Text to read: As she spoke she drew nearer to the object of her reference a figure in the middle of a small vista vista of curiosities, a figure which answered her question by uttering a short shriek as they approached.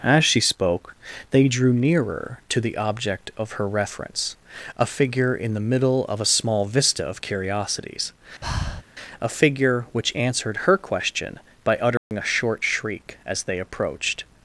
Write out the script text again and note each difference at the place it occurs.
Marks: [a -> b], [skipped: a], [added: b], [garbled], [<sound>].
As she spoke [she -> they] drew nearer to the object of her reference a figure in the middle of a small vista [skipped: vista] of curiosities, [breath] a figure which answered her question by uttering [dropout] a short shriek as they approached.